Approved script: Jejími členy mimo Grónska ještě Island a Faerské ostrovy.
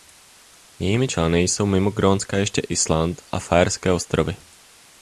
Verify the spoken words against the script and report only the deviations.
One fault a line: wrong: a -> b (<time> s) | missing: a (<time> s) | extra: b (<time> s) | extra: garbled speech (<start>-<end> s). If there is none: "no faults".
extra: jsou (1.4 s)